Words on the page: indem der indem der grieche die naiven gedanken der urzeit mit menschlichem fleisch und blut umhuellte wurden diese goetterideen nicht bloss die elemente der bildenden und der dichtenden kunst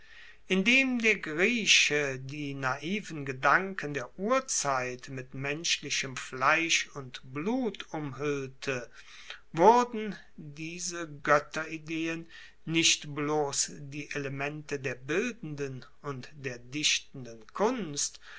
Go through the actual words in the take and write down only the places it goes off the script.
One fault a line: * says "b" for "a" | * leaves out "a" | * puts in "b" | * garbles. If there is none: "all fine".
* leaves out "indem der"